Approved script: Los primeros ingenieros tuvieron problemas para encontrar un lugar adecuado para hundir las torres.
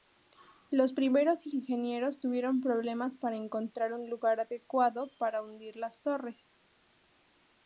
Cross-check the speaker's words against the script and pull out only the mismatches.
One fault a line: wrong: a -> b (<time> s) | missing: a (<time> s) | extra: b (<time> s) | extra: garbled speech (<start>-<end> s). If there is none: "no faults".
no faults